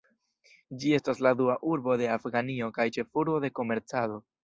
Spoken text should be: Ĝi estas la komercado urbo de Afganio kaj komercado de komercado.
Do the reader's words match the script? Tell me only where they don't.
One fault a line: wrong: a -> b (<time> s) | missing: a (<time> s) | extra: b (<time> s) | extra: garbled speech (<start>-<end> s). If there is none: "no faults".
wrong: komercado -> dua (1.4 s)
wrong: komercado -> ĉefurbo (3.0 s)